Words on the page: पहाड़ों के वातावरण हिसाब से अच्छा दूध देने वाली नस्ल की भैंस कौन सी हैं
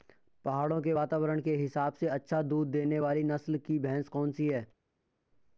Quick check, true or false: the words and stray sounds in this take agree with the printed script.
false